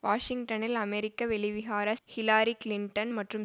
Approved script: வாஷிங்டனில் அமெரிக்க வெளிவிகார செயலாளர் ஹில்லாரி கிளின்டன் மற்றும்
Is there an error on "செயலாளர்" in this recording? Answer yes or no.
yes